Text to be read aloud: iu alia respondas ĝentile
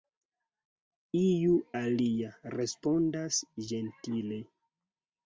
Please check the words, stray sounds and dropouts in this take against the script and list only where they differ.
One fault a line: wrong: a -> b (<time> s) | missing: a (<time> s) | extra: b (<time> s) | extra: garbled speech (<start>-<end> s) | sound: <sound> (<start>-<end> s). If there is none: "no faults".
no faults